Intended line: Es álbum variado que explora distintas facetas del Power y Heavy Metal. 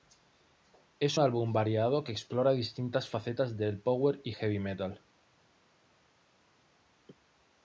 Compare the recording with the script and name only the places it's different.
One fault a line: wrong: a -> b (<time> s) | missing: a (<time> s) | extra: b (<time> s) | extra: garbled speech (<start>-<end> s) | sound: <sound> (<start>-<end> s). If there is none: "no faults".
no faults